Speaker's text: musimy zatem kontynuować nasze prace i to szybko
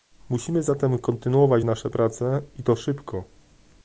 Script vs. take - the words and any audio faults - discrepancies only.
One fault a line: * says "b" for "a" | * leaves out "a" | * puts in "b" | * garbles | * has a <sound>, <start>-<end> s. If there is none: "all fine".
all fine